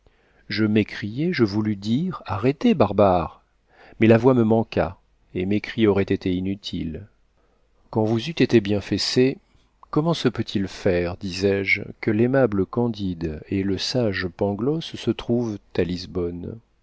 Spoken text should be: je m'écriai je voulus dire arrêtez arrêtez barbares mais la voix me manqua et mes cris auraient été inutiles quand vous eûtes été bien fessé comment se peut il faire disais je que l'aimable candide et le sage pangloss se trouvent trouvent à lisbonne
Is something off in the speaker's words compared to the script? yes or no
yes